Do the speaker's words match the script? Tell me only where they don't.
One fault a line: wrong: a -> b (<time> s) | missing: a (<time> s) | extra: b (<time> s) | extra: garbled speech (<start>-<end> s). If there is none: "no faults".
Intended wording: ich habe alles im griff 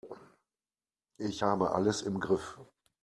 no faults